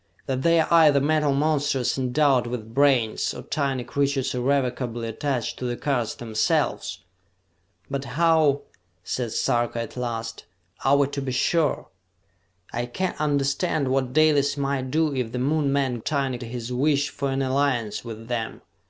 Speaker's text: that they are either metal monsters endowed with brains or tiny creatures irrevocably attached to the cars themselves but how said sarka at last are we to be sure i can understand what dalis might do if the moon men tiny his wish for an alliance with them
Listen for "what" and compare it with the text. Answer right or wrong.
right